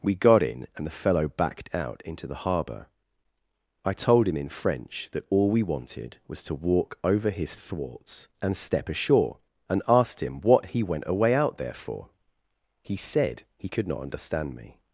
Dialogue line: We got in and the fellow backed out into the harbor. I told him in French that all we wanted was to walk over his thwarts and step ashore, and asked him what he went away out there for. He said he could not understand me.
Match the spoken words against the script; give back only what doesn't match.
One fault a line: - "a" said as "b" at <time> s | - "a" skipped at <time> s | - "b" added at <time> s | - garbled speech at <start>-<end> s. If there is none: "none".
none